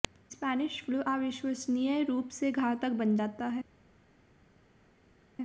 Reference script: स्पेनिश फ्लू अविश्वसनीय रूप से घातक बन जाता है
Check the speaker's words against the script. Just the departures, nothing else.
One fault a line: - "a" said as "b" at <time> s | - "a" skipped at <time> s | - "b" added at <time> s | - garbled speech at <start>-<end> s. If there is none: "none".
none